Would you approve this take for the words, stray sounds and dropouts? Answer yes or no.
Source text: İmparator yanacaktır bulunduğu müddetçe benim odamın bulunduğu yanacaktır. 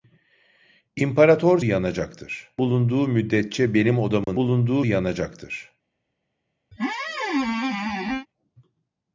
no